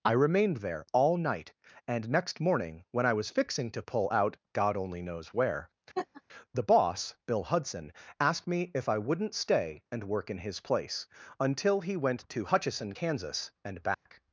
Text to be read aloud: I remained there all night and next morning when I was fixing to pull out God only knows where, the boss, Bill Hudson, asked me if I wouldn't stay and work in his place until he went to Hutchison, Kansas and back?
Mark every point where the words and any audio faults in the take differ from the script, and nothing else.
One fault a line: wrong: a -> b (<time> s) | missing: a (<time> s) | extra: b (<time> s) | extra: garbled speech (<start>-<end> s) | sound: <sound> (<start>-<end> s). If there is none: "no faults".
sound: laugh (6.0-6.2 s)
sound: dropout (13.9-14.1 s)